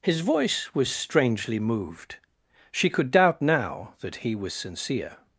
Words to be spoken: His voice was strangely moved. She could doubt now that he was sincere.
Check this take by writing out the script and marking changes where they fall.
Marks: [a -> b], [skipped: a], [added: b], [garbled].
His voice was strangely moved. She could doubt now that he was sincere.